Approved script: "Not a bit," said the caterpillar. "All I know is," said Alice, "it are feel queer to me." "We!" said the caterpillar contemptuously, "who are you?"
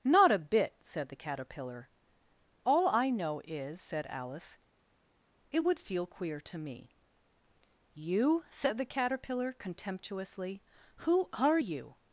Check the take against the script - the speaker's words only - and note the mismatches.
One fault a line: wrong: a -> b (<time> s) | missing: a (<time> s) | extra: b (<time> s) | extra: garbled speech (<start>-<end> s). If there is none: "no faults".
wrong: are -> would (5.6 s)
wrong: We -> You (7.9 s)